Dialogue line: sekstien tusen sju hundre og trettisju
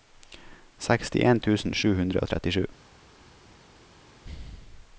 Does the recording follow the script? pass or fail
pass